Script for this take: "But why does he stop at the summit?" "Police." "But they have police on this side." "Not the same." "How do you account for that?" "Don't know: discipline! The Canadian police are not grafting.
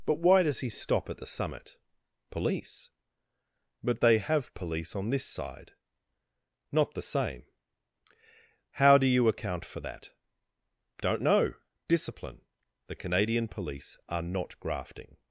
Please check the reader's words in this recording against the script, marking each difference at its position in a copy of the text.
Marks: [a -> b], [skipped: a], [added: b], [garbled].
"But why does he stop at the summit?" "Police." "But they have police on this side." "Not the same." "How do you account for that?" "Don't know: discipline! The Canadian police are not grafting.